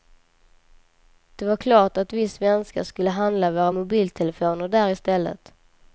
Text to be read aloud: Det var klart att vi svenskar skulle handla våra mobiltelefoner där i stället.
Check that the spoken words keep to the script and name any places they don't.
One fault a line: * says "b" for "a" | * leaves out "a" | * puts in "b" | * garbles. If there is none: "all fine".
all fine